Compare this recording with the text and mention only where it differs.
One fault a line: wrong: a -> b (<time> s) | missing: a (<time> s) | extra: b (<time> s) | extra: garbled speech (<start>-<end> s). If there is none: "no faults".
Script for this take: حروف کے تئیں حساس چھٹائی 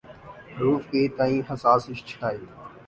no faults